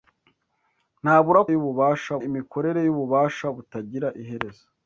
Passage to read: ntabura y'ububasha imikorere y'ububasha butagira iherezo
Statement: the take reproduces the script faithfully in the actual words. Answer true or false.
true